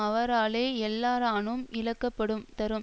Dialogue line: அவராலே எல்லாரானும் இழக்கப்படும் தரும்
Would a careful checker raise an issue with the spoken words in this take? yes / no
no